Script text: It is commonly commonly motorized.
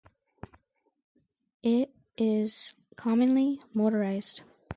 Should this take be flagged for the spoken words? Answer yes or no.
yes